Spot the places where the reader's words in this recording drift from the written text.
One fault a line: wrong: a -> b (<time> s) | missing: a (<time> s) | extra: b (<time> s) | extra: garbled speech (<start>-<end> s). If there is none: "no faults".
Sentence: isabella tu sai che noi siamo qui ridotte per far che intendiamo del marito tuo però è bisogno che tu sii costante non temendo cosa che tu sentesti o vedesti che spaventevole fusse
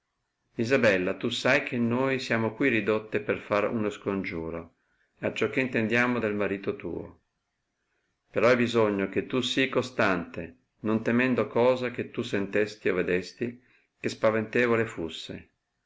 extra: uno scongiuro acciò (3.7 s)